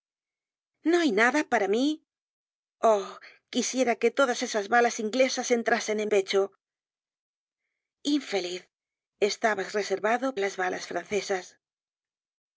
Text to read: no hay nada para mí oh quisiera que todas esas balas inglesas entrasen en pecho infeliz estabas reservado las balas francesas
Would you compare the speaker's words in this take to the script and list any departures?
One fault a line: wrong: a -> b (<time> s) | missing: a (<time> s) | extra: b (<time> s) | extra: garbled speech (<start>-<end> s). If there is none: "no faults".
no faults